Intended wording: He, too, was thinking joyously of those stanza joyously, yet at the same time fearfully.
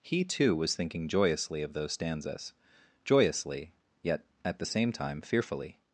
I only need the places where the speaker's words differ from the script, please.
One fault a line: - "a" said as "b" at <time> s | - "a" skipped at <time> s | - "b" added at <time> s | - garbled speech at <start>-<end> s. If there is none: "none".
- "stanza" said as "stanzas" at 1.9 s